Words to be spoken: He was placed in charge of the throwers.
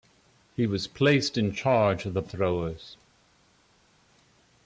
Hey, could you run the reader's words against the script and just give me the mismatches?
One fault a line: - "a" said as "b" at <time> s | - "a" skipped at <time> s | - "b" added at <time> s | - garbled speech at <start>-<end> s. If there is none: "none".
none